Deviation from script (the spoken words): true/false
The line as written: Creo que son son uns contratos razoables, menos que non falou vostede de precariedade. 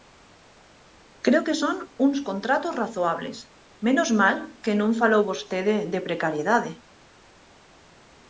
true